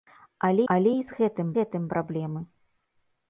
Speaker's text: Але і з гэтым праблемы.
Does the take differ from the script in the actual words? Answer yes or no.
yes